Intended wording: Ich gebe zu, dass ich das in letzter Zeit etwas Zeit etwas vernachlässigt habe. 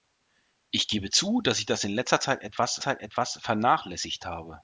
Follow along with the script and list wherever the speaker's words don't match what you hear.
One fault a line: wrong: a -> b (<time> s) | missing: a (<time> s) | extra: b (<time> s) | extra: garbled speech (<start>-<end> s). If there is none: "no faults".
no faults